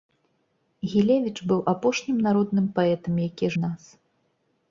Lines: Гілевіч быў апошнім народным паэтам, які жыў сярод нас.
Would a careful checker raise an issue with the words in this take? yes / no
yes